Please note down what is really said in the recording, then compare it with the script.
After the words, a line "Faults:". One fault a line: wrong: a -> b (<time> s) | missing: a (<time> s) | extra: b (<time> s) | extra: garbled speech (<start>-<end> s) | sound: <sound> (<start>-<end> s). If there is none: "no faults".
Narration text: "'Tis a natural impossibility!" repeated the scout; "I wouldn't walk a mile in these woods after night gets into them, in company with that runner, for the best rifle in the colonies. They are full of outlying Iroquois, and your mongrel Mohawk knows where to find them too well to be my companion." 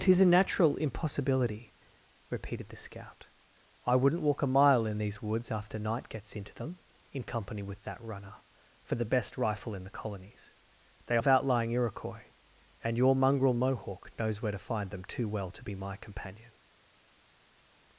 "'Tis a natural impossibility!" repeated the scout; "I wouldn't walk a mile in these woods after night gets into them, in company with that runner, for the best rifle in the colonies. They of outlying Iroquois, and your mongrel Mohawk knows where to find them too well to be my companion."
Faults:
missing: are full (11.2 s)